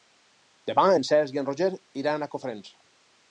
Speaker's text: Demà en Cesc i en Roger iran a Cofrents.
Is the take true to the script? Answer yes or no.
yes